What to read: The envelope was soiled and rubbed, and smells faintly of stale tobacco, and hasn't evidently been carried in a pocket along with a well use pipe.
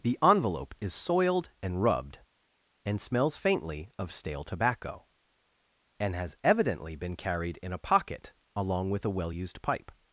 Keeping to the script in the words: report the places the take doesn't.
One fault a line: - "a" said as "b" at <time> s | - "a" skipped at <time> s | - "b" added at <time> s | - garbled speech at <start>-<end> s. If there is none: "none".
- "was" said as "is" at 0.8 s
- "hasn't" said as "has" at 6.2 s
- "use" said as "used" at 9.3 s